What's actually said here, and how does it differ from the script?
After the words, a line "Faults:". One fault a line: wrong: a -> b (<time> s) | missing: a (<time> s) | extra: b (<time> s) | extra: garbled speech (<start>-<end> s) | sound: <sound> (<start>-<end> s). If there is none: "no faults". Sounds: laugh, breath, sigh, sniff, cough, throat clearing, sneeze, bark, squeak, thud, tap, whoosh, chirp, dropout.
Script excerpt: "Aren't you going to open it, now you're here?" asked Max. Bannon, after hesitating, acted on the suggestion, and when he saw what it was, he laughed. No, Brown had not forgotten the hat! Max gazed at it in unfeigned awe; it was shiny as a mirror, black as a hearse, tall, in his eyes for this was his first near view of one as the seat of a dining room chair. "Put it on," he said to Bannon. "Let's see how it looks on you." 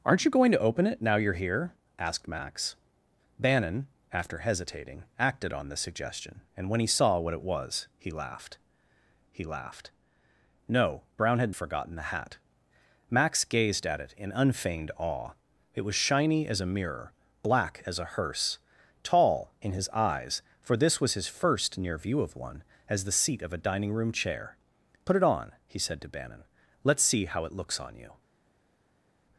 "Aren't you going to open it, now you're here?" asked Max. Bannon, after hesitating, acted on the suggestion, and when he saw what it was, he laughed he laughed. No, Brown had forgotten the hat! Max gazed at it in unfeigned awe; it was shiny as a mirror, black as a hearse, tall, in his eyes for this was his first near view of one as the seat of a dining room chair. "Put it on," he said to Bannon. "Let's see how it looks on you."
Faults:
extra: he laughed (9.3 s)
missing: not (11.6 s)